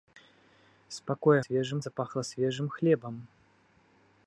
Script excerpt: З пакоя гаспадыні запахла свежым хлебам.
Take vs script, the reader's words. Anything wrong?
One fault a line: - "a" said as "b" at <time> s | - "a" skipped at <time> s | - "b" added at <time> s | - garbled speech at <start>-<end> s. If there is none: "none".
- "гаспадыні" said as "свежым" at 1.4 s